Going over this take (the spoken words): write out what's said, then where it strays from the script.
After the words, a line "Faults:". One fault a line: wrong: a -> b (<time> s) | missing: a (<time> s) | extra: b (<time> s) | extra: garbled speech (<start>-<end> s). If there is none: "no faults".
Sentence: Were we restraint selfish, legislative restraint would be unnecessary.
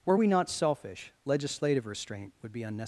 Were we not selfish, legislative restraint would be unnecessary.
Faults:
wrong: restraint -> not (0.3 s)